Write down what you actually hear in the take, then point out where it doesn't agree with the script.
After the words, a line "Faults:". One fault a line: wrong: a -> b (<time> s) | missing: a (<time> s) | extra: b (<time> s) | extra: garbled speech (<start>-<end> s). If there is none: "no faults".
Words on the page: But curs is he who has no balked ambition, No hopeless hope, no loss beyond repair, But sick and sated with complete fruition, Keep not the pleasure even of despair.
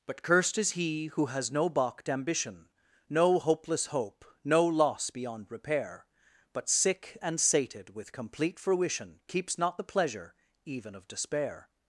But cursed is he who has no balked ambition, No hopeless hope, no loss beyond repair, But sick and sated with complete fruition, Keeps not the pleasure even of despair.
Faults:
wrong: curs -> cursed (0.2 s)
wrong: Keep -> Keeps (9.3 s)